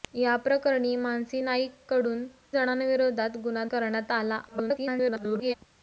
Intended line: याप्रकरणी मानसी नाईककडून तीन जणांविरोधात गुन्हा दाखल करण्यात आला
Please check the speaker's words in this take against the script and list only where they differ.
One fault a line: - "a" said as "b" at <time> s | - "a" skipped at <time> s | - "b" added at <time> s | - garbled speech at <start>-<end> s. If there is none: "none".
- "तीन" skipped at 2.2 s
- "दाखल" skipped at 3.6 s
- garbled speech at 4.5-5.5 s